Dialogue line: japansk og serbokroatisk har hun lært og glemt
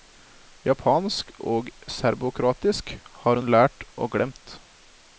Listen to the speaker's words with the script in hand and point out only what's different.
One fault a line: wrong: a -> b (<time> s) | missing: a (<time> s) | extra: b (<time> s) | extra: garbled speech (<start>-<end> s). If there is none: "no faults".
no faults